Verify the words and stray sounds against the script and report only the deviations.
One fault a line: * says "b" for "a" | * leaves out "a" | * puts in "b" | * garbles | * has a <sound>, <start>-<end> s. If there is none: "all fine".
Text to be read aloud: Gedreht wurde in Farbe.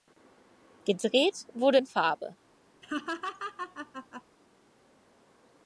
* has a laugh, 2.8-4.2 s